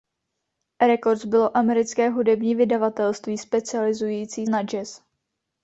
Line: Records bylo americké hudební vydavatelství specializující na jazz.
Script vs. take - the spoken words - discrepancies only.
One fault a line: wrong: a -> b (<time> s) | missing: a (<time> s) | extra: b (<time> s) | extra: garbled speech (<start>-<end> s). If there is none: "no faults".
no faults